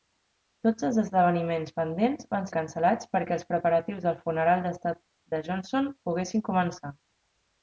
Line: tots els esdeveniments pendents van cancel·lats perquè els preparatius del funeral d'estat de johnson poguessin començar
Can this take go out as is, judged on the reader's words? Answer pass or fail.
pass